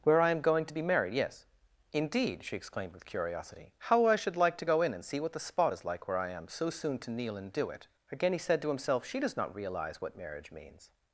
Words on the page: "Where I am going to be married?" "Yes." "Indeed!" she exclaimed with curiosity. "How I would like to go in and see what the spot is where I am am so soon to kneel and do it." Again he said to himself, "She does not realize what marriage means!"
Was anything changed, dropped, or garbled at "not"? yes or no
no